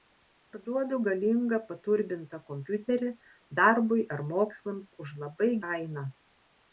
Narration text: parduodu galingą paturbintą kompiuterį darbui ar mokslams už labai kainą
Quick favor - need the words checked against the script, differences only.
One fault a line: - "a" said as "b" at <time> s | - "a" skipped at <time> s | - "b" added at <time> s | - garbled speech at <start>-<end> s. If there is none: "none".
none